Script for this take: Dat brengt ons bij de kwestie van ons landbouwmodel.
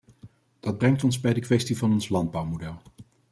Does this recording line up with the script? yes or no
yes